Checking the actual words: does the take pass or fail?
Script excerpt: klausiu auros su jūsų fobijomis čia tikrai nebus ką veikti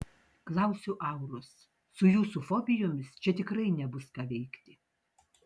pass